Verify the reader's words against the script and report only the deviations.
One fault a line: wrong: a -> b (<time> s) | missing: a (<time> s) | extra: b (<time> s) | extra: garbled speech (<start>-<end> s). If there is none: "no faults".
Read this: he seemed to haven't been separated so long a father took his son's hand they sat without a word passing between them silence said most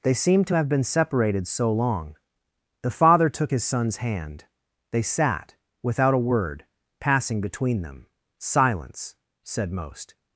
wrong: he -> they (0.0 s)
wrong: haven't -> have (0.5 s)
wrong: a -> the (2.8 s)